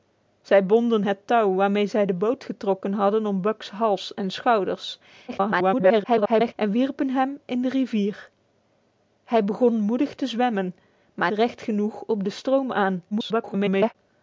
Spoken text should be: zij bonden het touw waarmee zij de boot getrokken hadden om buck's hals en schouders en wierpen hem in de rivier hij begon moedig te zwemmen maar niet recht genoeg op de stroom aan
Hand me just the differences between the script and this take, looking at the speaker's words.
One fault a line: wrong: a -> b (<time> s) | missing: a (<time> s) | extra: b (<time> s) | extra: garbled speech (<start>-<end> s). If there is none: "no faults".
extra: garbled speech (5.3-6.5 s)
missing: niet (11.3 s)
extra: garbled speech (13.1-13.9 s)